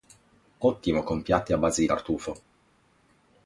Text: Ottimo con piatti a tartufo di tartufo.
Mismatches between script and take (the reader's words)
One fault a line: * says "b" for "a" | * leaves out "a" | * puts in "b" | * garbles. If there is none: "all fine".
* says "base" for "tartufo"